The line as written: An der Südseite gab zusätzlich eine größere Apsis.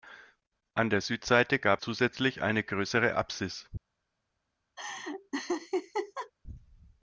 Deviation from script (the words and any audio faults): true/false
true